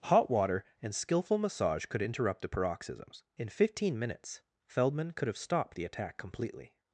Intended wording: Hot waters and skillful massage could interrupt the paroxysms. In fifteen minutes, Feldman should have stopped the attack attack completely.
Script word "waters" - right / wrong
wrong